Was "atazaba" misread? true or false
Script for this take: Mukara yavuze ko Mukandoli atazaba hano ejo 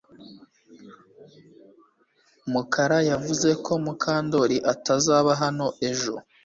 false